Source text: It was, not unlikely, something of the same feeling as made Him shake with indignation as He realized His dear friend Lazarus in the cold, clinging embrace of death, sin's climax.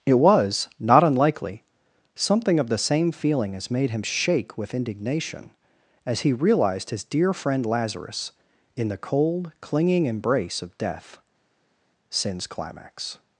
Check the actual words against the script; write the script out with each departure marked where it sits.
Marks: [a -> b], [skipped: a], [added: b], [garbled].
It was, not unlikely, something of the same feeling as made Him shake with indignation as He realized His dear friend Lazarus in the cold, clinging embrace of death, sin's climax.